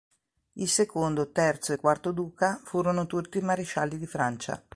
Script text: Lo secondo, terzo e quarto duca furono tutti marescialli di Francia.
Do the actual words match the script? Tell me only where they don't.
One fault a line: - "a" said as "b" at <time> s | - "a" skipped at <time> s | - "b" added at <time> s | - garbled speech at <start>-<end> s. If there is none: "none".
- "Lo" said as "Il" at 0.5 s